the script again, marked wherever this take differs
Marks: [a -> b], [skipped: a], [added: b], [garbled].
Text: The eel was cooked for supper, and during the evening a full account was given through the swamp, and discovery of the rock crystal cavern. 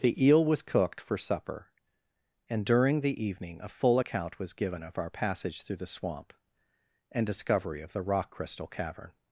The eel was cooked for supper, and during the evening a full account was given [added: of our passage] through the swamp, and discovery of the rock crystal cavern.